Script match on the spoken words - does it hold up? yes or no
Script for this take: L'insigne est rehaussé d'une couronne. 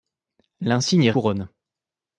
no